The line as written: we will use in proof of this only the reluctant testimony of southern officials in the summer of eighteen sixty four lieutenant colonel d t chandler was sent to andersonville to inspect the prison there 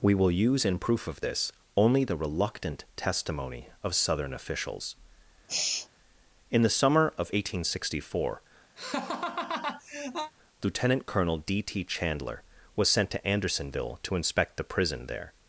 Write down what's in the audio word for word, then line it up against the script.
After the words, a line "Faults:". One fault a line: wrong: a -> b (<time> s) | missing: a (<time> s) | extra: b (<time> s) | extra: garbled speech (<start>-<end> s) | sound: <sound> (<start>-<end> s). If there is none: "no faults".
we will use in proof of this only the reluctant testimony of southern officials in the summer of eighteen sixty four lieutenant colonel d t chandler was sent to andersonville to inspect the prison there
Faults:
sound: sigh (5.5-5.9 s)
sound: laugh (8.8-10.3 s)